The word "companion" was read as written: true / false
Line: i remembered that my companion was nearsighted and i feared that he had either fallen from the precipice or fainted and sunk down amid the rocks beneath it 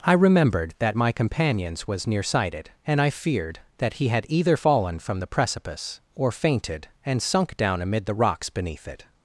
false